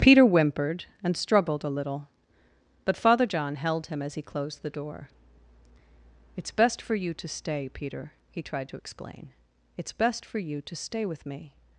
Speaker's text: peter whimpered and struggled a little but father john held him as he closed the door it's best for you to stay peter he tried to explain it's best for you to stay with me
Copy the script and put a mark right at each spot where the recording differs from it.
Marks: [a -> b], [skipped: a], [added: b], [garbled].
peter whimpered and struggled a little but father john held him as he closed the door it's best for you to stay peter he tried to explain it's best for you to stay with me